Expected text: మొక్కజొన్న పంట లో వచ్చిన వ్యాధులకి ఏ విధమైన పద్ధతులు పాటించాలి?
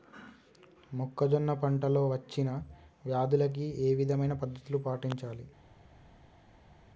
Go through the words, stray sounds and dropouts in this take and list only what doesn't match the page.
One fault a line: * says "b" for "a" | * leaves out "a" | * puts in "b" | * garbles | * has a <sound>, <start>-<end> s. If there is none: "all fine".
all fine